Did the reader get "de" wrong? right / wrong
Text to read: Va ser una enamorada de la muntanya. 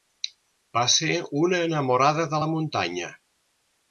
right